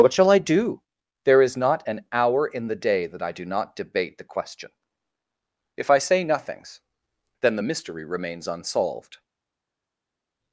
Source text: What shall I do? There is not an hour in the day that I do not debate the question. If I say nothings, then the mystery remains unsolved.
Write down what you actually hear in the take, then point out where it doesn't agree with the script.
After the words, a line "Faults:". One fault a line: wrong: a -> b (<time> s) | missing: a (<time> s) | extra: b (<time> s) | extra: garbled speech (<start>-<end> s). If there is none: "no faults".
What shall I do? There is not an hour in the day that I do not debate the question. If I say nothings, then the mystery remains unsolved.
Faults:
no faults